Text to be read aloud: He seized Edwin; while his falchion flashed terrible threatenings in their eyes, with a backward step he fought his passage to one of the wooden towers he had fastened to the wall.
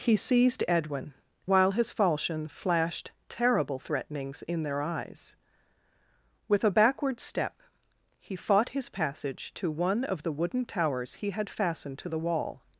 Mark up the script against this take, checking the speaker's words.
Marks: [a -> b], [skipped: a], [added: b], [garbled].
He seized Edwin; while his falchion flashed terrible threatenings in their eyes, with a backward step he fought his passage to one of the wooden towers he had fastened to the wall.